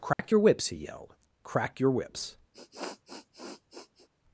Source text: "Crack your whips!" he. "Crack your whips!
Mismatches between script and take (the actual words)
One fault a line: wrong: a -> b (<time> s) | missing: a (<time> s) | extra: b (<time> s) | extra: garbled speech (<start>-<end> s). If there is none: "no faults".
extra: yelled (0.8 s)